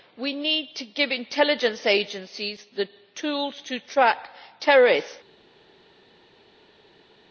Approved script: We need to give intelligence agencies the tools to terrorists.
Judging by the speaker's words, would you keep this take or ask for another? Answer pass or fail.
fail